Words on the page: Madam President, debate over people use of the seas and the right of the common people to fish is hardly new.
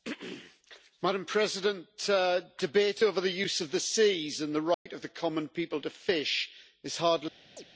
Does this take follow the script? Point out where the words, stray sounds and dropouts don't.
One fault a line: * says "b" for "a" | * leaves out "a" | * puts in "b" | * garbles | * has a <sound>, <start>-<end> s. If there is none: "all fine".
* says "the" for "people"
* has a dropout, 4.7-4.9 s
* has a chirp, 7.6-7.6 s